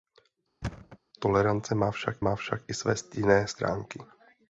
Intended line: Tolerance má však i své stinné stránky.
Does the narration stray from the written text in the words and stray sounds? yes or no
yes